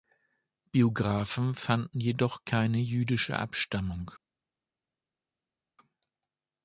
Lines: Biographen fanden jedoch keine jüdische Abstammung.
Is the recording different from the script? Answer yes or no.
no